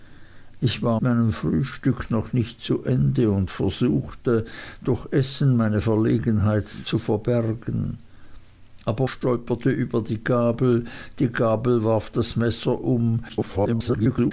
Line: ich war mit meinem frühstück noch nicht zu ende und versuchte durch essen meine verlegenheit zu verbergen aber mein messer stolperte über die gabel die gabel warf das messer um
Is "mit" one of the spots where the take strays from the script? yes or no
yes